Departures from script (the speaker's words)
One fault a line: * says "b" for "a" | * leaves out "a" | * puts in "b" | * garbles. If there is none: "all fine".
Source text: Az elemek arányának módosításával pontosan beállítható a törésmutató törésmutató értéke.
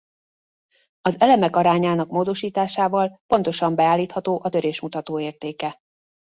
* leaves out "törésmutató"